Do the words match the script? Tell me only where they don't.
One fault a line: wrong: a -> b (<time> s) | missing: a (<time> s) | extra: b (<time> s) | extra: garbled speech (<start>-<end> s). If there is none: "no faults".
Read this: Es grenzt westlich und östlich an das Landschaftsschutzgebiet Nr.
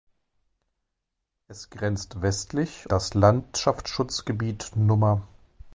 missing: und östlich an (2.9 s)